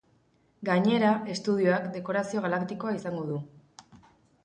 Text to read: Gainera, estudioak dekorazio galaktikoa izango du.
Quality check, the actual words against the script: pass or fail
pass